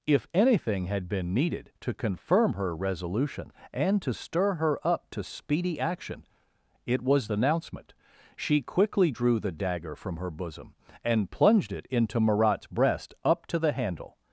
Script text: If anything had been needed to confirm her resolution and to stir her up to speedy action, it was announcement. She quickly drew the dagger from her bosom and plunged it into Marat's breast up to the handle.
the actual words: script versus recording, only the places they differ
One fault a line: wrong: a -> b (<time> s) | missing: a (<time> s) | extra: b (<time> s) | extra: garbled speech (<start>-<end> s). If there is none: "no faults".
no faults